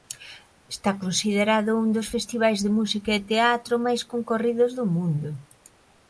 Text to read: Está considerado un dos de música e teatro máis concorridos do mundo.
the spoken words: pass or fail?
fail